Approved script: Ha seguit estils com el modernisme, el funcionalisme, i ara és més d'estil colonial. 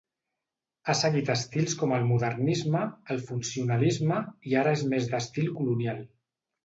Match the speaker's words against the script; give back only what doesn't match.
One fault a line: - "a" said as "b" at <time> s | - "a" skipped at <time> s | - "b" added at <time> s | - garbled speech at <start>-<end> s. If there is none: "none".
none